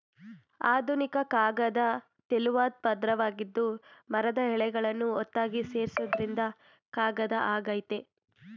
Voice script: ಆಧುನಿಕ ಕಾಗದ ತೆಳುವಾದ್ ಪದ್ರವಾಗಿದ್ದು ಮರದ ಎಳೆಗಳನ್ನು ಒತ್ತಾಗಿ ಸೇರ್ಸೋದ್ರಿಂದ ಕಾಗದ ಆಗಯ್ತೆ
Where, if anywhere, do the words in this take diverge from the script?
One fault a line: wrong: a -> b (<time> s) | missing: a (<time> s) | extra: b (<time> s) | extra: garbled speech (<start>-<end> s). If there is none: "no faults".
no faults